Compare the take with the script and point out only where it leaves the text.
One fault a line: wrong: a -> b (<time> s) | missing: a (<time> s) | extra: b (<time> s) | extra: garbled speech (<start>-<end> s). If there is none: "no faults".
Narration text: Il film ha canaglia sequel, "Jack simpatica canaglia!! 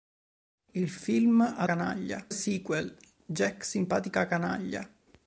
no faults